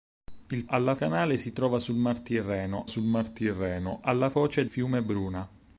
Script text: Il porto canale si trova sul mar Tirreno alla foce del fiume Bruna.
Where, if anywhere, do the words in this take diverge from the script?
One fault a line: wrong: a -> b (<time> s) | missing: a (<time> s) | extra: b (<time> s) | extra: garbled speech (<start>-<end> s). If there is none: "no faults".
wrong: porto -> alla (0.7 s)
extra: sul mar Tirreno (2.8 s)
missing: del (4.7 s)